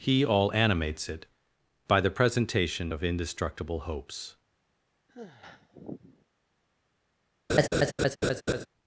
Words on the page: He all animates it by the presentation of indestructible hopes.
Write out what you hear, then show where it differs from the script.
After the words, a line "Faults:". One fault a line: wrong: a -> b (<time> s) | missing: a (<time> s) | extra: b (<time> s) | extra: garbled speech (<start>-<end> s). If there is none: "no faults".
He all animates it by the presentation of indestructible hopes.
Faults:
no faults